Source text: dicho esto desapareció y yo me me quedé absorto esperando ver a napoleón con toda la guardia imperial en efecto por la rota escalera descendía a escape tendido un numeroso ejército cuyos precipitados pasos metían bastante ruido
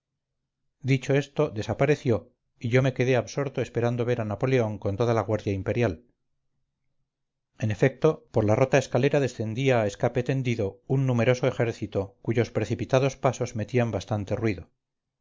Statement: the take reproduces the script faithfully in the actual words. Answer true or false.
false